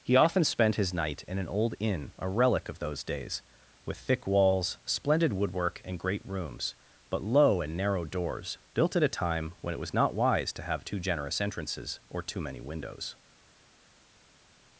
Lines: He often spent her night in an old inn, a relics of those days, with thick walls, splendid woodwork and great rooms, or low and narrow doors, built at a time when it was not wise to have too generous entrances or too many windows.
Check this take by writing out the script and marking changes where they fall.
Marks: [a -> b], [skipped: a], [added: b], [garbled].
He often spent [her -> his] night in an old inn, a [relics -> relic] of those days, with thick walls, splendid woodwork and great rooms, [or -> but] low and narrow doors, built at a time when it was not wise to have too generous entrances or too many windows.